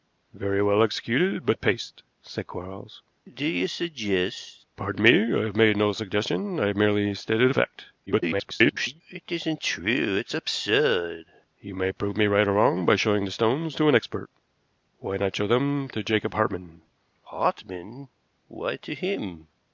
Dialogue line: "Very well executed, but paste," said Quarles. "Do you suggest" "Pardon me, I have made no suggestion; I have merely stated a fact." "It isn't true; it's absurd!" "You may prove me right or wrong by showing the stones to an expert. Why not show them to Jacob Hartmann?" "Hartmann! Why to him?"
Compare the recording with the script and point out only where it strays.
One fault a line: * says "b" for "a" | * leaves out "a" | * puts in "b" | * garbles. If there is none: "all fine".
* garbles